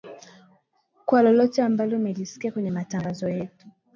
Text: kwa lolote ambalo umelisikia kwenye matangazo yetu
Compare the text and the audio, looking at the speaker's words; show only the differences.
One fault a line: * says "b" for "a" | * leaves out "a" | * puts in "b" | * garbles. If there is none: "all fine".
all fine